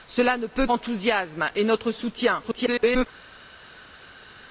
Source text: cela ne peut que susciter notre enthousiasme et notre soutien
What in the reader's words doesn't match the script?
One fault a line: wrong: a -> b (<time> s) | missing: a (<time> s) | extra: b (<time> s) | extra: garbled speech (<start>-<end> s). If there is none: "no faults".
missing: que susciter notre (0.7 s)
extra: garbled speech (2.4-3.1 s)